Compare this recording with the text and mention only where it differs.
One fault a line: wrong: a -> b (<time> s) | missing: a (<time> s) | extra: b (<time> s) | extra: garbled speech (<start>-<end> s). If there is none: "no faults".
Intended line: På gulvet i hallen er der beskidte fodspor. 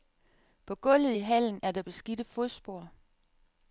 no faults